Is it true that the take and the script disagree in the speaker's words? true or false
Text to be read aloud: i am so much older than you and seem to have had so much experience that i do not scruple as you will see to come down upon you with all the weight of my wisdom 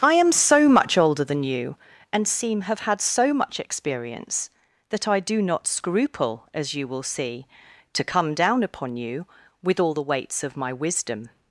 true